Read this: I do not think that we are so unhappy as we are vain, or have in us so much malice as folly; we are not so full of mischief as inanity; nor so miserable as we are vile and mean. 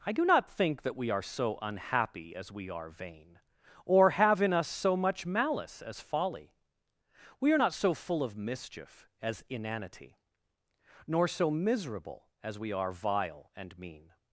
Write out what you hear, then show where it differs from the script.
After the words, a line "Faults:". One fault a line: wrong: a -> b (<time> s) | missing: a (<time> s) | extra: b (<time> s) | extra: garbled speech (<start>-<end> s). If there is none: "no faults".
I do not think that we are so unhappy as we are vain, or have in us so much malice as folly; we are not so full of mischief as inanity; nor so miserable as we are vile and mean.
Faults:
no faults